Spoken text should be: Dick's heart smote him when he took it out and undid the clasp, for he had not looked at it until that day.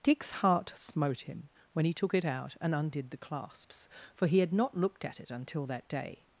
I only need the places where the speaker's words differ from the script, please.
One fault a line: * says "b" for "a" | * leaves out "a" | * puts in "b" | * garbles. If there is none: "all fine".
* says "clasps" for "clasp"